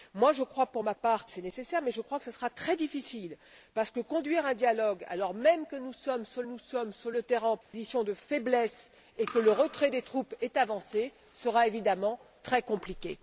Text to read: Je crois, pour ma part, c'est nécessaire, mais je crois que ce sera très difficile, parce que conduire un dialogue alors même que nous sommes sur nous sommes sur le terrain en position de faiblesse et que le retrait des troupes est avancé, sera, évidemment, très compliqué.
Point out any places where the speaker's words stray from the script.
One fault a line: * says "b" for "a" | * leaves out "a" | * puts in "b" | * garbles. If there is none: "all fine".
all fine